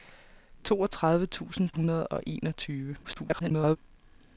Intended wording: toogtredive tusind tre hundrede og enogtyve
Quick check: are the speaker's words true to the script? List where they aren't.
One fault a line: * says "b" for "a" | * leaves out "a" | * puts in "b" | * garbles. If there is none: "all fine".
* leaves out "tre"
* garbles